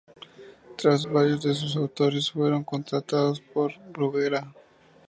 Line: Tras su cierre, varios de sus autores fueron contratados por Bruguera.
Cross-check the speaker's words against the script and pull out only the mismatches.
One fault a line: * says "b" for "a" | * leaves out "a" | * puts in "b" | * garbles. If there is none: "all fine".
* leaves out "su cierre"